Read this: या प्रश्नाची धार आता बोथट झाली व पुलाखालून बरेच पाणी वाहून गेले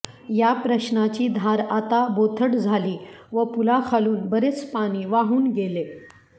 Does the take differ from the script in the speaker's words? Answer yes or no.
no